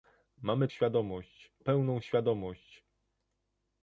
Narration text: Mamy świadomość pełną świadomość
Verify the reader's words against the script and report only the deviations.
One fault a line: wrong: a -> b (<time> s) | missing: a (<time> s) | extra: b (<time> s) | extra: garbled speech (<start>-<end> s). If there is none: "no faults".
no faults